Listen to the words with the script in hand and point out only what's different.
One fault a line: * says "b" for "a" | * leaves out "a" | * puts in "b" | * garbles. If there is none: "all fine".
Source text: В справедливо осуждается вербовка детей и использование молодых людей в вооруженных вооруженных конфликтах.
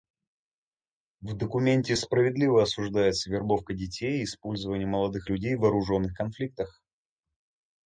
* puts in "документе"
* leaves out "вооруженных"